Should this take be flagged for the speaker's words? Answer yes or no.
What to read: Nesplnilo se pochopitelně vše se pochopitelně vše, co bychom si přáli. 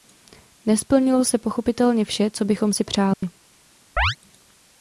yes